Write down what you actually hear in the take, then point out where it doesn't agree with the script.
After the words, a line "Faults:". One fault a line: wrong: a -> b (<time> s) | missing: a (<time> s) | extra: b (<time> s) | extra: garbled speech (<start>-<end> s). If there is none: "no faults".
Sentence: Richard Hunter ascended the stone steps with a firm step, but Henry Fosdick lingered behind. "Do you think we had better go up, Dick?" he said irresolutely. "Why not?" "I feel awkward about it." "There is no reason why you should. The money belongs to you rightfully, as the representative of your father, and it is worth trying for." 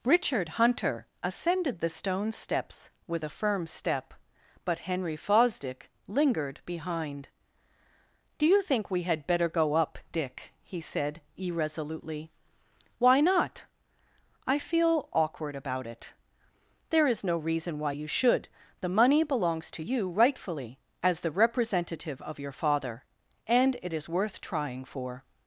Richard Hunter ascended the stone steps with a firm step, but Henry Fosdick lingered behind. "Do you think we had better go up, Dick?" he said irresolutely. "Why not?" "I feel awkward about it." "There is no reason why you should. The money belongs to you rightfully, as the representative of your father, and it is worth trying for."
Faults:
no faults